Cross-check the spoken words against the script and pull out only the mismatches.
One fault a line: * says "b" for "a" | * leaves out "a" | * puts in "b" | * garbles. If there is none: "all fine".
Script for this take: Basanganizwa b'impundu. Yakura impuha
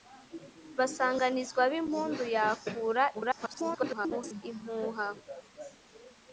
* garbles